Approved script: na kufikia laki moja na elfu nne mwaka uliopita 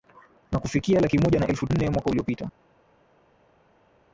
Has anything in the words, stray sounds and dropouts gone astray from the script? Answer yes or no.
no